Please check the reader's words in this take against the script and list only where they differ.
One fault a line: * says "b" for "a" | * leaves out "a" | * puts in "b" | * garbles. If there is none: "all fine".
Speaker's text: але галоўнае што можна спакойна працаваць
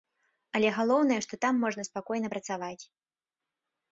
* puts in "там"